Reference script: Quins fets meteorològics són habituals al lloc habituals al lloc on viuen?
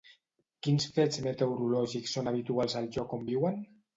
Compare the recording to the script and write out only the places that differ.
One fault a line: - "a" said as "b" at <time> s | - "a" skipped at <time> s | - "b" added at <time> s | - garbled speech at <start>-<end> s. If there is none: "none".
- "habituals al lloc" skipped at 3.2 s